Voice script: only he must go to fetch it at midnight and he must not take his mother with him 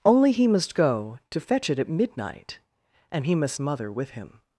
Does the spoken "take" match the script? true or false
false